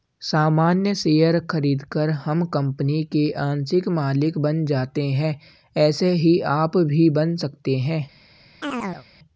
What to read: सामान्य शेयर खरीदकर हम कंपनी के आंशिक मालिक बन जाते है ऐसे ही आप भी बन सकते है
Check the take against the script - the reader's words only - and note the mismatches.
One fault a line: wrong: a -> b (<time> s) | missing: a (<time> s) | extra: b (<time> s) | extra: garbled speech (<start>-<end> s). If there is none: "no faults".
no faults